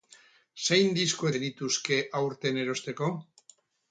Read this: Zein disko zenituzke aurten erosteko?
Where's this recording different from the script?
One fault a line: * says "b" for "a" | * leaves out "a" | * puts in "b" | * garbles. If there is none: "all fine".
all fine